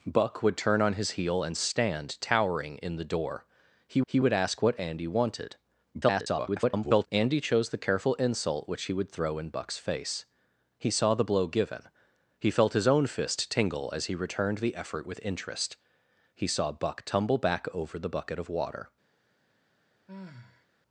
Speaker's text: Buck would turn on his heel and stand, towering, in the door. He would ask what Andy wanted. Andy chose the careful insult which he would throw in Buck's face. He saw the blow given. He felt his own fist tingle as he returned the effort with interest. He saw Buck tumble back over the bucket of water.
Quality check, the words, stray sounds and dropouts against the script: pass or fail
fail